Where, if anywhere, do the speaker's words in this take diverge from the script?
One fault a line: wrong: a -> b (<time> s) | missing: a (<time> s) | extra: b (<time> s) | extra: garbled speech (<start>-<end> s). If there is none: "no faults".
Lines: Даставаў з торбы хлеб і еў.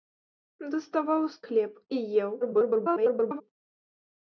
missing: торбы (1.4 s)
extra: garbled speech (2.4-3.4 s)